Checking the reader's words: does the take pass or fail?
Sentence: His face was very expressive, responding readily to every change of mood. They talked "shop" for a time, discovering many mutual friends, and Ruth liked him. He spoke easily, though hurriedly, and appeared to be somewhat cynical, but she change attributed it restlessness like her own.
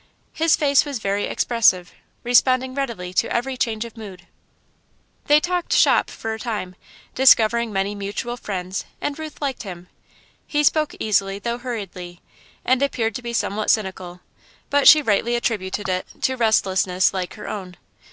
fail